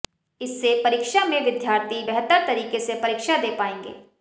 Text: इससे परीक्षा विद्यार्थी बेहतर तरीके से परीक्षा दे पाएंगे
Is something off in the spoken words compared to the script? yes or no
yes